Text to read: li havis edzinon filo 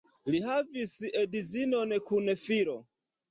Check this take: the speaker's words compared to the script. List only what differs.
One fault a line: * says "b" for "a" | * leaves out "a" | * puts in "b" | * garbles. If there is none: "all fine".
* puts in "kun"